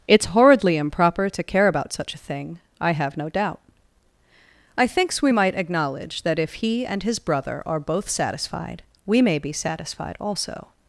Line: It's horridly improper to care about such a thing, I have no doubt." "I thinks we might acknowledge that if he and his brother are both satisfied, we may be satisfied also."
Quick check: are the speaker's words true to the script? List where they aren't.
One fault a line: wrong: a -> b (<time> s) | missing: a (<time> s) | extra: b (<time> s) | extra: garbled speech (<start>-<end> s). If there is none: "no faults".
no faults